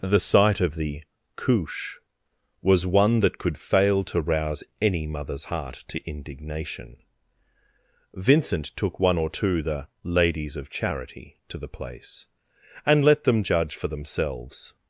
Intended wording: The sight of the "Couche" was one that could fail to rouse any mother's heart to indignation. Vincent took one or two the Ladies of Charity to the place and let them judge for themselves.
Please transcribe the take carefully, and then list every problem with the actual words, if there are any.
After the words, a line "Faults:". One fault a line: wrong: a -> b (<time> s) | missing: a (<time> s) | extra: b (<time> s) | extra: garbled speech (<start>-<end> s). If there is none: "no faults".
The sight of the "Couche" was one that could fail to rouse any mother's heart to indignation. Vincent took one or two the Ladies of Charity to the place and let them judge for themselves.
Faults:
no faults